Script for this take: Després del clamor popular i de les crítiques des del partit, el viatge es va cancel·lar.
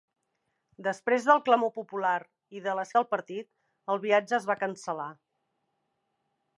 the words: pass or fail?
fail